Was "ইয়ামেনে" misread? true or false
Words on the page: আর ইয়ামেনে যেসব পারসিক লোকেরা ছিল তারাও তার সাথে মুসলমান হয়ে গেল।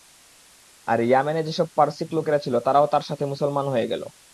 false